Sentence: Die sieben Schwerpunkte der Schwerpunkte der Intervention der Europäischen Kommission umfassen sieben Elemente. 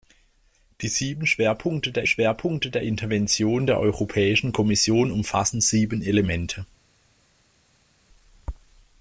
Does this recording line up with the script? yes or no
yes